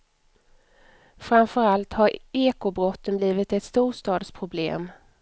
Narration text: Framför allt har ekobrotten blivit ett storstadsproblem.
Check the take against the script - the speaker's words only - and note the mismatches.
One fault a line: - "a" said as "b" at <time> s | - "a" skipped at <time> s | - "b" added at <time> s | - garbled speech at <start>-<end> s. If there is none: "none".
none